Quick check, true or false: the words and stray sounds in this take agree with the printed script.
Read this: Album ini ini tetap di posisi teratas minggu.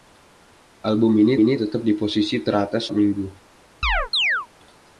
false